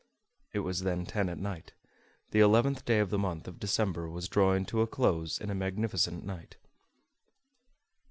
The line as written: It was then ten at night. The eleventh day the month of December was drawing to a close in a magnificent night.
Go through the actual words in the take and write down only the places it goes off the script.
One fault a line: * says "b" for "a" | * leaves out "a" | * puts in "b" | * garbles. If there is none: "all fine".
* puts in "of"